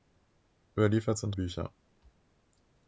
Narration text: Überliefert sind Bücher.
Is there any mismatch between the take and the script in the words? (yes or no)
no